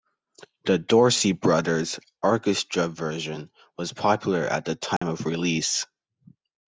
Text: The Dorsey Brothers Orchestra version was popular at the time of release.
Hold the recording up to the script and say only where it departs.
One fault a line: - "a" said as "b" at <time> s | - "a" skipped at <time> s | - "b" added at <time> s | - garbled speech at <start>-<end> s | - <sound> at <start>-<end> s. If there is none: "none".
- dropout at 5.0-5.0 s